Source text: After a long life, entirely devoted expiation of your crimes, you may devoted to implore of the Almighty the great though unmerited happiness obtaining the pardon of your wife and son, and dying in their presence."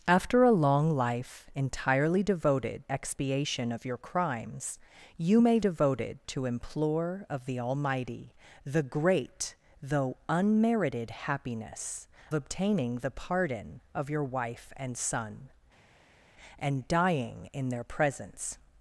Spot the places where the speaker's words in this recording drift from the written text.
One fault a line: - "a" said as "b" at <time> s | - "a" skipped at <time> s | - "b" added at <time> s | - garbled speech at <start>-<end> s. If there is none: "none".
none